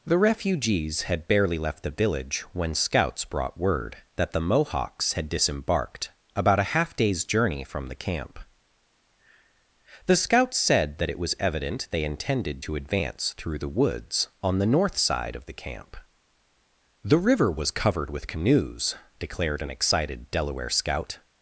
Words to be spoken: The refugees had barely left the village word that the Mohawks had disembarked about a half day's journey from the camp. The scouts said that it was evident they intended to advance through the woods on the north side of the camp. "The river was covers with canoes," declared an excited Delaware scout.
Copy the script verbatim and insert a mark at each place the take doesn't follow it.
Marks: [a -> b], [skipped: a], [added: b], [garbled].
The refugees had barely left the village [added: when scouts brought] word that the Mohawks had disembarked about a half day's journey from the camp. The scouts said that it was evident they intended to advance through the woods on the north side of the camp. "The river was [covers -> covered] with canoes," declared an excited Delaware scout.